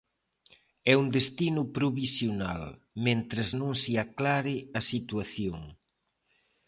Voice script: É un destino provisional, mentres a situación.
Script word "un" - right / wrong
right